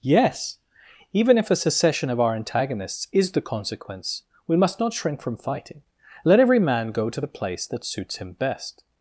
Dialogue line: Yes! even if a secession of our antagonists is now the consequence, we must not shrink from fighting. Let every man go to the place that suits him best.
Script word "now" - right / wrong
wrong